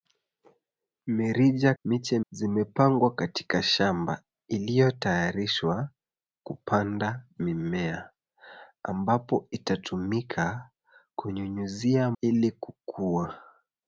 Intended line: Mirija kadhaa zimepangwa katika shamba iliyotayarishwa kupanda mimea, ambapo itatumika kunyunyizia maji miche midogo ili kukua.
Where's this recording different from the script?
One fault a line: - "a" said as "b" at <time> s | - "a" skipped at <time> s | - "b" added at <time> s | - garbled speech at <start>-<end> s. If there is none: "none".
- "kadhaa" said as "miche" at 1.8 s
- "maji miche midogo" skipped at 12.1 s